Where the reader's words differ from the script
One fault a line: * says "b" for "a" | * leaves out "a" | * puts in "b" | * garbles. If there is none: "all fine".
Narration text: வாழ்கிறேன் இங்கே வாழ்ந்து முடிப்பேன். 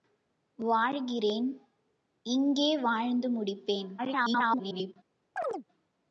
* garbles